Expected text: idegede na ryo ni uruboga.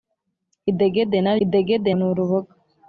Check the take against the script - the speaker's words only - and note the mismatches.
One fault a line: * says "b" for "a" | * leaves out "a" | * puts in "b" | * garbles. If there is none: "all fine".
* says "idegede" for "ryo"